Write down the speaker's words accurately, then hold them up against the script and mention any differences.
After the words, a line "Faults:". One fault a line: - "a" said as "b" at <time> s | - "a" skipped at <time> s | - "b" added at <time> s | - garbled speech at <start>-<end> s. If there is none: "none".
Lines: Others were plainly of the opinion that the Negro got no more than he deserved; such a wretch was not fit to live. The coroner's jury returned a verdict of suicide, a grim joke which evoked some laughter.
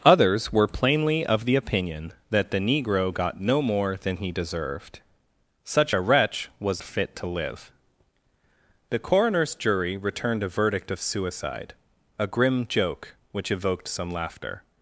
Others were plainly of the opinion that the Negro got no more than he deserved; such a wretch was fit to live. The coroner's jury returned a verdict of suicide, a grim joke which evoked some laughter.
Faults:
- "not" skipped at 6.8 s